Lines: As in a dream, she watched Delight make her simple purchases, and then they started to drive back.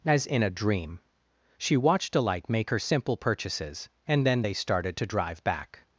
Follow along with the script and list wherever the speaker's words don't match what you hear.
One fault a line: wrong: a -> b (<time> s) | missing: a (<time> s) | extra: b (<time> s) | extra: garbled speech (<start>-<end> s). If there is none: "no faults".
no faults